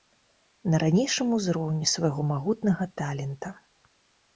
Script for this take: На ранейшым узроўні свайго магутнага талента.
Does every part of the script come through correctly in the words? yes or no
yes